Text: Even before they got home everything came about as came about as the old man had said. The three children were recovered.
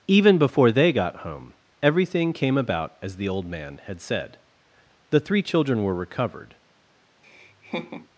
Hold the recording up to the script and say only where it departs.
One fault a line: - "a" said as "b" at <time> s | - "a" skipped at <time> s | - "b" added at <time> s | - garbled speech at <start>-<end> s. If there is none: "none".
- "came about as" skipped at 3.2 s